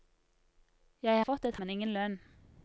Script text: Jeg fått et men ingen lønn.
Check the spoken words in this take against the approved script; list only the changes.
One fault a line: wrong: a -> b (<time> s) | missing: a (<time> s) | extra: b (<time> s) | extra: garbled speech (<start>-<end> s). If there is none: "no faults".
no faults